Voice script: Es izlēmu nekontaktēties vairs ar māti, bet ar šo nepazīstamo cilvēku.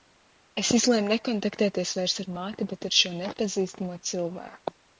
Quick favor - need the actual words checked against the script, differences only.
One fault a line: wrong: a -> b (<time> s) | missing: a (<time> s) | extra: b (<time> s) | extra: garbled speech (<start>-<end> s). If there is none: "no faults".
no faults